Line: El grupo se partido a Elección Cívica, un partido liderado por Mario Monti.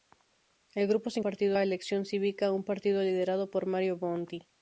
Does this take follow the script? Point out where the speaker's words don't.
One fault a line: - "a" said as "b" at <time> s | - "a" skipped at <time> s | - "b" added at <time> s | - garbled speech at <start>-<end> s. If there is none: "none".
none